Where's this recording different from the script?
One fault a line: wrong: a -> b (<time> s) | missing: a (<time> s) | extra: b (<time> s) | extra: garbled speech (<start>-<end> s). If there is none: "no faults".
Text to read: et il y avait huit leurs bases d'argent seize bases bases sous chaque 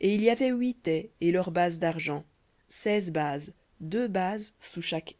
extra: ais et (0.9 s)
extra: deux (3.8 s)